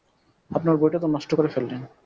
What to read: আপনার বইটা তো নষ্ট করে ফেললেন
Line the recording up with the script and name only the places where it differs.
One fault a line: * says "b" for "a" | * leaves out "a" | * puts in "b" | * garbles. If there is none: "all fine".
all fine